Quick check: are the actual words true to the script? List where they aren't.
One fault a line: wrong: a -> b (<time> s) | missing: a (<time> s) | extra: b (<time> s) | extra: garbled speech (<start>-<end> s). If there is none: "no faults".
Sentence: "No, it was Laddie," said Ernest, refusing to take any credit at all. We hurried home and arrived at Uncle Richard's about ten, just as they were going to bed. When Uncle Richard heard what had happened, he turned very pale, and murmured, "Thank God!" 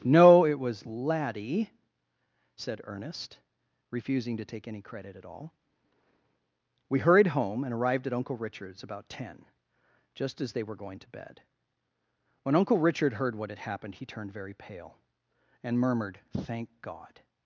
no faults